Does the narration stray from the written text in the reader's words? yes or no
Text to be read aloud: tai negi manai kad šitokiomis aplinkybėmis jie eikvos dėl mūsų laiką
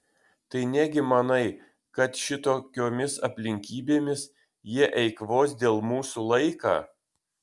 no